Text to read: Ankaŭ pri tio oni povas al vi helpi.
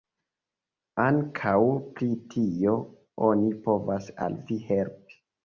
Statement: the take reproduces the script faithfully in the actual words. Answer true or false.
true